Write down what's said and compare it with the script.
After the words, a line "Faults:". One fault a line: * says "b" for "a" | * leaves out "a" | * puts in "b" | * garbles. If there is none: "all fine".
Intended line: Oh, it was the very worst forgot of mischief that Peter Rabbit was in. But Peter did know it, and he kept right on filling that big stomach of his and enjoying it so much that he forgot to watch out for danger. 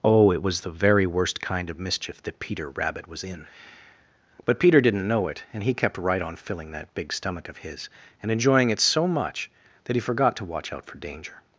Oh, it was the very worst kind of mischief that Peter Rabbit was in. But Peter didn't know it, and he kept right on filling that big stomach of his and enjoying it so much that he forgot to watch out for danger.
Faults:
* says "kind" for "forgot"
* says "didn't" for "did"